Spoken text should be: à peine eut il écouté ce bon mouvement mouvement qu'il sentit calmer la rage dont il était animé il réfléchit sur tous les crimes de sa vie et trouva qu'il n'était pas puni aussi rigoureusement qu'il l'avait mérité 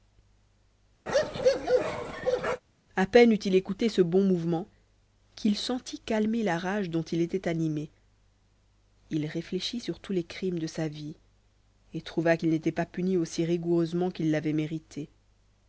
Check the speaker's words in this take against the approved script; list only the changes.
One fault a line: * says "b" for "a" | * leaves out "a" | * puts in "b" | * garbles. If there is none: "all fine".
* leaves out "mouvement"